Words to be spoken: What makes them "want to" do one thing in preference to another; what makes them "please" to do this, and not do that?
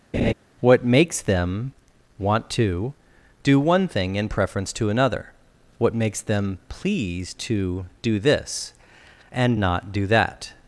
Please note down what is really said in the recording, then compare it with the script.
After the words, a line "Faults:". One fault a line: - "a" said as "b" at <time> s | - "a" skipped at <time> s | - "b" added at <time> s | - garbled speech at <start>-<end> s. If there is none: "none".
What makes them "want to" do one thing in preference to another; what makes them "please" to do this, and not do that?
Faults:
none